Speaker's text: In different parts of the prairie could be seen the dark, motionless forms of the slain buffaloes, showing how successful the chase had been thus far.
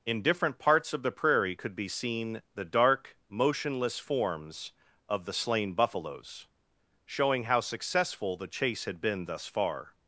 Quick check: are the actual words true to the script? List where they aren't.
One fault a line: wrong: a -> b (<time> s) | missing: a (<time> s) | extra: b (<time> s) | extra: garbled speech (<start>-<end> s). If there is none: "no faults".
no faults